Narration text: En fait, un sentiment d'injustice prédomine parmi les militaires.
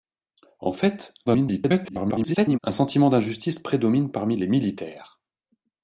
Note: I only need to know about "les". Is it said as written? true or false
true